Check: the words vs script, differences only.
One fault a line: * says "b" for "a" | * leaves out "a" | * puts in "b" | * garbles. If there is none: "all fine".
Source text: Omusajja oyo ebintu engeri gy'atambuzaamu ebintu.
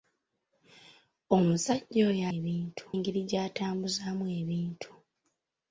all fine